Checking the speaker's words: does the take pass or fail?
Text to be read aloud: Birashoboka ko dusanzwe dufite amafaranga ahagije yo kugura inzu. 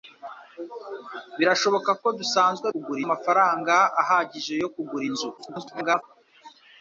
fail